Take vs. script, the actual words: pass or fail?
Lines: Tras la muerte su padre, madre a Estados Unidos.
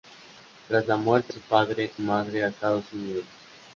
pass